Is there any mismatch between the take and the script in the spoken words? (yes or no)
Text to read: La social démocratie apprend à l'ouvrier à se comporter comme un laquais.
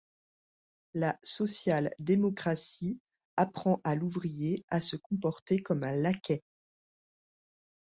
no